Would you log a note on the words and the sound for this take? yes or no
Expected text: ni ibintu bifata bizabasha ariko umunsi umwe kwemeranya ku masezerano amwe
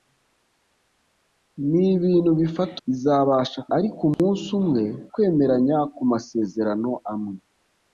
yes